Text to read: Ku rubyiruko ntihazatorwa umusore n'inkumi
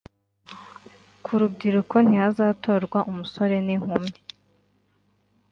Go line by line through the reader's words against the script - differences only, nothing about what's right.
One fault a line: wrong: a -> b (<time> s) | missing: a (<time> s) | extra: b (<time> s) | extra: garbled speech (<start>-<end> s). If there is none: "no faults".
no faults